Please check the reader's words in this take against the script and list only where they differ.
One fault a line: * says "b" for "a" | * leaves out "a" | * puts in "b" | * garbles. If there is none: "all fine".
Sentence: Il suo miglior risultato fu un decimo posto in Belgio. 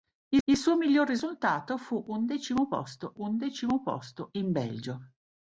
* puts in "il"
* puts in "un decimo posto"